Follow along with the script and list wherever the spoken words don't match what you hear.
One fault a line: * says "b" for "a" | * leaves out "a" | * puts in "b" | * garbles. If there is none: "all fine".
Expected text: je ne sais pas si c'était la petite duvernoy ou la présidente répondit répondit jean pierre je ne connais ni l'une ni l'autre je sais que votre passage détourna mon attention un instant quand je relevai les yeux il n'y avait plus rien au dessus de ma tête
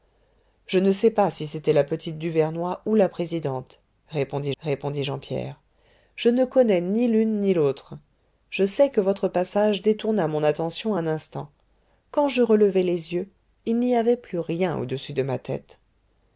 all fine